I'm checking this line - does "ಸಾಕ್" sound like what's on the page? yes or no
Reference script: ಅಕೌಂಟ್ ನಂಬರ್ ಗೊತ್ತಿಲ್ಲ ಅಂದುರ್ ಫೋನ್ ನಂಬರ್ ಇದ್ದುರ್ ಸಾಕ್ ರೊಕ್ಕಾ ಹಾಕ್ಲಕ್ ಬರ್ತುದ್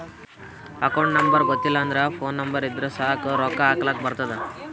yes